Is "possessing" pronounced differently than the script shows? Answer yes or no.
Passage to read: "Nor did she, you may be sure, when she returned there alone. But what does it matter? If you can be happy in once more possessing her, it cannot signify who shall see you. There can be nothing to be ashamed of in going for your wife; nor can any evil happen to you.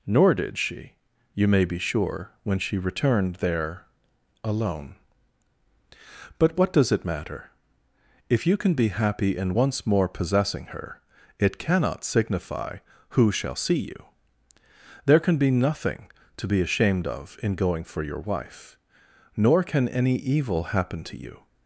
no